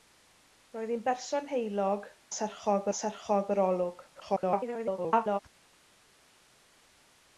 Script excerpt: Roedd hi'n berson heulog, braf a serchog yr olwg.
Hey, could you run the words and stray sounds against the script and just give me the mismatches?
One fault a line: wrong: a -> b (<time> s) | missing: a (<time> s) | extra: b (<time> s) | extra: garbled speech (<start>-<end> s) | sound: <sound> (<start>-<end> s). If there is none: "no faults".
wrong: braf -> serchog (2.4 s)
extra: garbled speech (4.1-5.4 s)